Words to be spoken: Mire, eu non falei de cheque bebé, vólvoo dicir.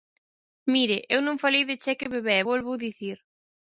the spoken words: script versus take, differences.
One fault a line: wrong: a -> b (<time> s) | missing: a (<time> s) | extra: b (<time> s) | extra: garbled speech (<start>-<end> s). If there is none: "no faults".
no faults